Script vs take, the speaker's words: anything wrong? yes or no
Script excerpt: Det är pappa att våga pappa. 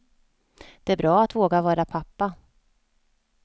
yes